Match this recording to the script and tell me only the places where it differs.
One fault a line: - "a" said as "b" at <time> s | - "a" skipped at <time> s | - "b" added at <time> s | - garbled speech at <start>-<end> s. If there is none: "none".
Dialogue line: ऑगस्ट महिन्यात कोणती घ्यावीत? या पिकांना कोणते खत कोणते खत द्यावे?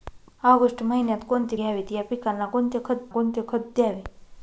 none